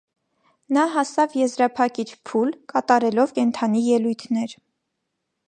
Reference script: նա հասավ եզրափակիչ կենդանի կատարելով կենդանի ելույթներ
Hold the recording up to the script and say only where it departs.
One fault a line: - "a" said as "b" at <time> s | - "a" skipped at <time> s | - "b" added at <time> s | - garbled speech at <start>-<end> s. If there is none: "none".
- "կենդանի" said as "փուլ" at 2.3 s